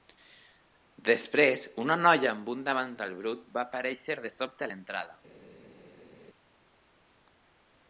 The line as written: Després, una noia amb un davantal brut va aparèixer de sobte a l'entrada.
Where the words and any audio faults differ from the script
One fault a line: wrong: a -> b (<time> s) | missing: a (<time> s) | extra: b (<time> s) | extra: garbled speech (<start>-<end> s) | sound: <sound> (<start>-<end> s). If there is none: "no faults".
no faults